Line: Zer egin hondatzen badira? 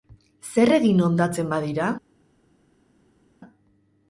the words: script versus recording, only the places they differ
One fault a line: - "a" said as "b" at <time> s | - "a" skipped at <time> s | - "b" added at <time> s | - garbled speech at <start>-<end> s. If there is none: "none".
none